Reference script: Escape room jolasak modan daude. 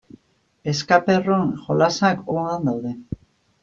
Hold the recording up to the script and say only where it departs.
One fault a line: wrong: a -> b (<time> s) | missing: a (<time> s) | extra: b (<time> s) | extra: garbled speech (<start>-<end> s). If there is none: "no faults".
no faults